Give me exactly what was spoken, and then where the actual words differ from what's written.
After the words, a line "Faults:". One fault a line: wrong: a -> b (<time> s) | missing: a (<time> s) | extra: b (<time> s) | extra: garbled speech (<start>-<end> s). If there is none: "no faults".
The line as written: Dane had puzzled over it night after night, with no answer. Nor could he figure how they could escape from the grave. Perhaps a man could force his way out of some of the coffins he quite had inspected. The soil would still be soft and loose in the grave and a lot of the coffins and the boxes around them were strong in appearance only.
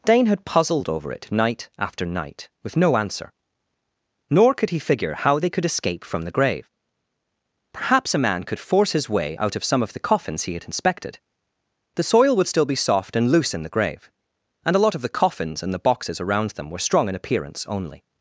Dane had puzzled over it night after night, with no answer. Nor could he figure how they could escape from the grave. Perhaps a man could force his way out of some of the coffins he had inspected. The soil would still be soft and loose in the grave and a lot of the coffins and the boxes around them were strong in appearance only.
Faults:
missing: quite (10.5 s)